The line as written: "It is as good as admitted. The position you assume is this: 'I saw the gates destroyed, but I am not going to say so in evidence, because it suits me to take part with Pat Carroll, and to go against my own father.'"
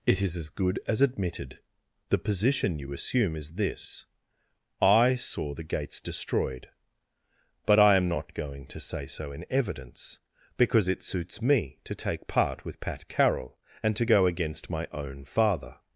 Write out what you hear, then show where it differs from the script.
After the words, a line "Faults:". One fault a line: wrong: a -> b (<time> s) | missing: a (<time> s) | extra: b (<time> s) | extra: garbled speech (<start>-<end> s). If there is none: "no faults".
"It is as good as admitted. The position you assume is this: 'I saw the gates destroyed, but I am not going to say so in evidence, because it suits me to take part with Pat Carroll, and to go against my own father.'"
Faults:
no faults